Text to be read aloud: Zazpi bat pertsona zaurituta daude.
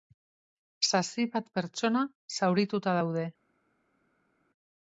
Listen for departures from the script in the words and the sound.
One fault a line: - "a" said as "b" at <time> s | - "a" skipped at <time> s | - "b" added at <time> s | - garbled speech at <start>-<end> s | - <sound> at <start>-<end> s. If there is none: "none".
none